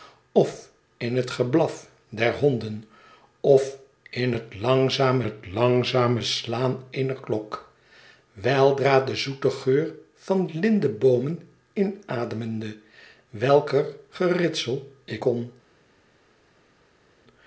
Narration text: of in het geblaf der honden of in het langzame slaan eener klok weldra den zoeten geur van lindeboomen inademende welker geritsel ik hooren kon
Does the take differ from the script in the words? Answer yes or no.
yes